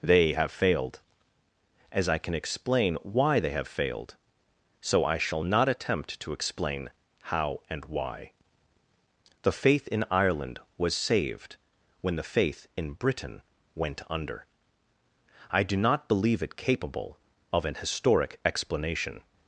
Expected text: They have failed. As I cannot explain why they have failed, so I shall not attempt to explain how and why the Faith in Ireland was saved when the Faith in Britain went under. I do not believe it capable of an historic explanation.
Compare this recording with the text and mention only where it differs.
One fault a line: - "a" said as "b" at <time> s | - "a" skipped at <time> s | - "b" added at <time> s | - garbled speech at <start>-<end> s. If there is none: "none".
- "cannot" said as "can" at 2.2 s